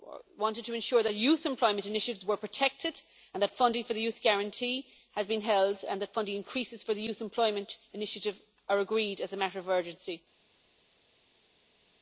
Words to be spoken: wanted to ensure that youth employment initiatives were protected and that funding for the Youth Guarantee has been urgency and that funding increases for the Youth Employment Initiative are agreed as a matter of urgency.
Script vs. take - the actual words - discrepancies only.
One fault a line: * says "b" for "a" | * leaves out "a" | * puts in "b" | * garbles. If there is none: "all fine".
* says "held" for "urgency"